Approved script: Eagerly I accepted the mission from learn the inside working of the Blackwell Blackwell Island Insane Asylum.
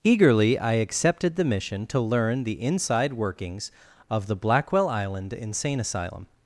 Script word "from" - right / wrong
wrong